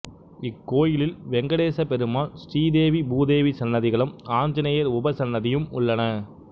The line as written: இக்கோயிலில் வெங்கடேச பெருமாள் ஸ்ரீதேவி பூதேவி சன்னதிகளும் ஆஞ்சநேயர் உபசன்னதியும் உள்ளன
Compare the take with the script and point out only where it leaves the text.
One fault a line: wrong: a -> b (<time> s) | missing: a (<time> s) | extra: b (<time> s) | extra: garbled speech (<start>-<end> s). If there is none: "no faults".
no faults